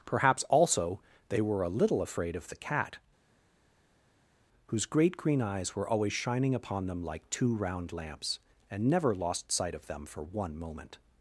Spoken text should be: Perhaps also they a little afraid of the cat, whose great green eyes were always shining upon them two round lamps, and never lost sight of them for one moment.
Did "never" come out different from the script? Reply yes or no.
no